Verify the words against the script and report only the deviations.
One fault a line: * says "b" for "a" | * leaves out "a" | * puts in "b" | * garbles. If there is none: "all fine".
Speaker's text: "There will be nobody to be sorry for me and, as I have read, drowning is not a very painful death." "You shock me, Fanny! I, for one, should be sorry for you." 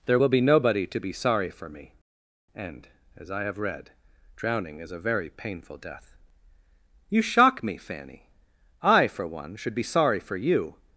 * leaves out "not"